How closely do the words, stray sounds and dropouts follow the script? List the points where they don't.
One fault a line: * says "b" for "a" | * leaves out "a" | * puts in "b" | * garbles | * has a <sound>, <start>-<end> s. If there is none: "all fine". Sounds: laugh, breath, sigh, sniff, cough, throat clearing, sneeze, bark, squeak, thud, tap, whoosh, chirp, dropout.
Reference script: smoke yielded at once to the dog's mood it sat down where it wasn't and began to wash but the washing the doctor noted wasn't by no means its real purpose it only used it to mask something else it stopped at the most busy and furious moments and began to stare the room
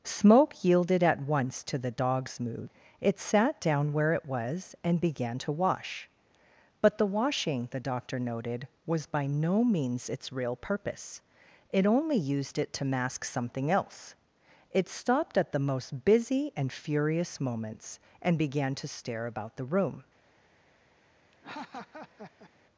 * says "was" for "wasn't"
* says "was" for "wasn't"
* puts in "about"
* has a laugh, 21.3-22.5 s